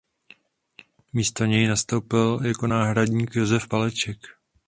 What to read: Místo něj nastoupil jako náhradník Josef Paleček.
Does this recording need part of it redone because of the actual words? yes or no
no